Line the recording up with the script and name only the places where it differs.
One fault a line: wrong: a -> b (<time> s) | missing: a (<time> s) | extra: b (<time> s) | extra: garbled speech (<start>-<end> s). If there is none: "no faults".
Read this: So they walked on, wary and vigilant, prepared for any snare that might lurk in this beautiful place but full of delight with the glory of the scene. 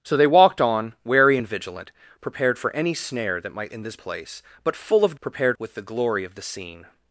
missing: lurk (3.7 s)
missing: beautiful (4.0 s)
wrong: delight -> prepared (5.2 s)